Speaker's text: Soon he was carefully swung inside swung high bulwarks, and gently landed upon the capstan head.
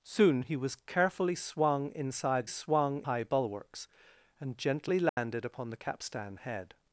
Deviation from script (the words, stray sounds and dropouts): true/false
true